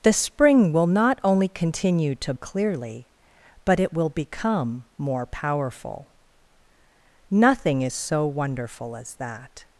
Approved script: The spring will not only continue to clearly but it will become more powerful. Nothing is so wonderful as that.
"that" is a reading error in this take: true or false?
false